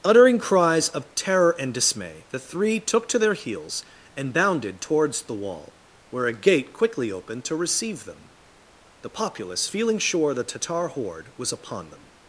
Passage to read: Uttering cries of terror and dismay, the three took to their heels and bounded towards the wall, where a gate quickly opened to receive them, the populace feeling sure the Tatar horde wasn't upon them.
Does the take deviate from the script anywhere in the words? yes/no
yes